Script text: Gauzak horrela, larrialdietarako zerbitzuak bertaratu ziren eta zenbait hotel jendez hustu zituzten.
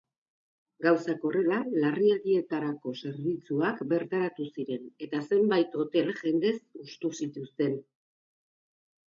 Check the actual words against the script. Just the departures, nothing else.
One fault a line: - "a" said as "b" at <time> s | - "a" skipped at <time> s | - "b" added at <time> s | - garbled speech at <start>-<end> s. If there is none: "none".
none